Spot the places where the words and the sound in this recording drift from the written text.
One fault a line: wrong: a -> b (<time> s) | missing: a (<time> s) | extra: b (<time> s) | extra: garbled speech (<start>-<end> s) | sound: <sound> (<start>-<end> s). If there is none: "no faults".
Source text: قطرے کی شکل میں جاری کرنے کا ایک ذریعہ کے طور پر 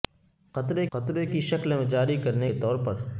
extra: قطرے (0.9 s)
missing: کا ایک ذریعہ (2.5 s)